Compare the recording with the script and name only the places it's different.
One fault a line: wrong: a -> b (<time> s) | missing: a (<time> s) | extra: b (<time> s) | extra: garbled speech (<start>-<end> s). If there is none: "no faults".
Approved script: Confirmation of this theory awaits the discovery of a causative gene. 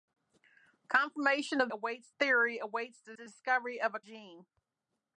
wrong: this -> awaits (1.7 s)
extra: the (3.1 s)
missing: causative (4.0 s)